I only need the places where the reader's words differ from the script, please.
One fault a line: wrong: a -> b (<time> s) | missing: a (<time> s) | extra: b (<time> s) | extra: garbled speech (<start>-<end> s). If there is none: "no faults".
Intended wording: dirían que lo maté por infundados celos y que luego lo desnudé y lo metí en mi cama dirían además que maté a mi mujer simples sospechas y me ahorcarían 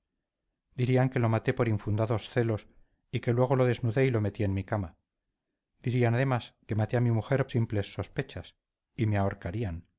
no faults